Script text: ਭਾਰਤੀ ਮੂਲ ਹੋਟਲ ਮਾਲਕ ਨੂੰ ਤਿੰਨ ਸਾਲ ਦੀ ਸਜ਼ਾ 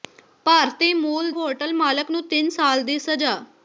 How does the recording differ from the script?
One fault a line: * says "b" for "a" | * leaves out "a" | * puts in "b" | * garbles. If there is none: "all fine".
all fine